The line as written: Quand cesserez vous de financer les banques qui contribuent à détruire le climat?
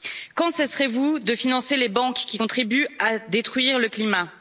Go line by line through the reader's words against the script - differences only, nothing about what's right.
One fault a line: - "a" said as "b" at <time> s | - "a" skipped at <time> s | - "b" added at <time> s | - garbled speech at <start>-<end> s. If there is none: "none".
none